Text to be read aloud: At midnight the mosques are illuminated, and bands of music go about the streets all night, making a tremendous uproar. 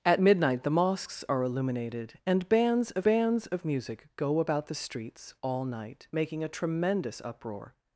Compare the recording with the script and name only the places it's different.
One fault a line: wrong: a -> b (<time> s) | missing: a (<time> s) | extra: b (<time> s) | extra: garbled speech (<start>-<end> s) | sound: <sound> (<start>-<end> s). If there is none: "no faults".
extra: bands of (3.0 s)